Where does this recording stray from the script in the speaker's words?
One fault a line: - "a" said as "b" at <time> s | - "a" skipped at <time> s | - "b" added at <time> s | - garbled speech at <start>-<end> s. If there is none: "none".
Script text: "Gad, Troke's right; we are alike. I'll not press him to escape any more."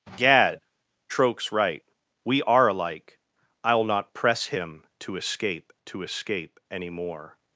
- "to escape" added at 5.8 s